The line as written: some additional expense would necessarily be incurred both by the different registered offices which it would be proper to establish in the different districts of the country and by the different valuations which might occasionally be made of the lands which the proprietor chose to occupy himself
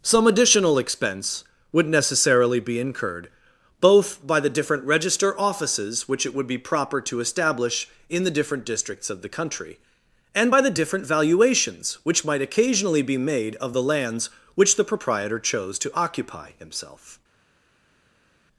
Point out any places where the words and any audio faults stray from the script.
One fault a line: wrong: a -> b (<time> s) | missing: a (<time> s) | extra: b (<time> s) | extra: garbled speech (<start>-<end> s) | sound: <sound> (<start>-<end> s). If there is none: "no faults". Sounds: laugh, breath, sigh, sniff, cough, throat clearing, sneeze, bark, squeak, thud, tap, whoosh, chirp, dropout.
wrong: registered -> register (4.8 s)